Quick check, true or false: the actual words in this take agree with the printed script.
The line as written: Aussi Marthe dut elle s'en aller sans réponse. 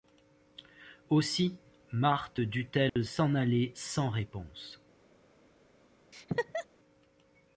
true